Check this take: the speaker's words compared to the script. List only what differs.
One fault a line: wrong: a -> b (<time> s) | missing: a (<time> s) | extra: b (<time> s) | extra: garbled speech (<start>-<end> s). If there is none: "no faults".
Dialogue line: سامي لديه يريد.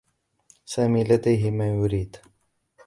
extra: ما (1.5 s)